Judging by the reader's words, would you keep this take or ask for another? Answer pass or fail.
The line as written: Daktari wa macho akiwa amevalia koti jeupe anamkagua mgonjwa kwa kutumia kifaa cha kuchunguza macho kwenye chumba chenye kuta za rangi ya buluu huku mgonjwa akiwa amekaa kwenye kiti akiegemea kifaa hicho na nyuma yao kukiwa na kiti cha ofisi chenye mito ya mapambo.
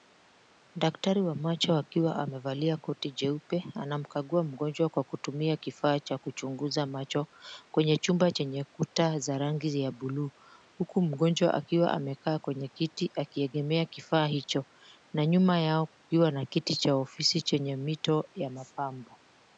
pass